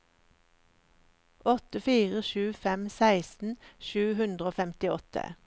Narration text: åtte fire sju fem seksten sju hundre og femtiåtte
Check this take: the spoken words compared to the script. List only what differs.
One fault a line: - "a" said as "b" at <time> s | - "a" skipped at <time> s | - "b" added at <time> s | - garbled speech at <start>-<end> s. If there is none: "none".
none